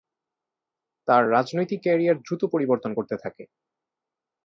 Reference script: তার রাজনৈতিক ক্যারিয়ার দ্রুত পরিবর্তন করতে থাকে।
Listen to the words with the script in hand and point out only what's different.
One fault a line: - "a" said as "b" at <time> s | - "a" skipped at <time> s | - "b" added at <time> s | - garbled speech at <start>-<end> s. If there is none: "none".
none